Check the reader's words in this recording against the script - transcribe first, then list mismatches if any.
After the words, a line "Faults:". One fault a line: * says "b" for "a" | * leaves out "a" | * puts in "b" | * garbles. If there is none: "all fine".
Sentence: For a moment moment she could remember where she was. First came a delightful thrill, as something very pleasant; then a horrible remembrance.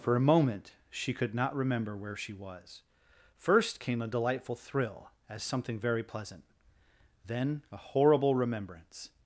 For a moment she could not remember where she was. First came a delightful thrill, as something very pleasant; then a horrible remembrance.
Faults:
* leaves out "moment"
* puts in "not"